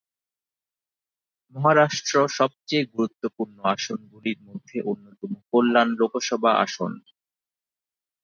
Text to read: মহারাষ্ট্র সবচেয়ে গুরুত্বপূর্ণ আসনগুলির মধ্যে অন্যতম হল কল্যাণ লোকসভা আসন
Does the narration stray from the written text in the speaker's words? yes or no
yes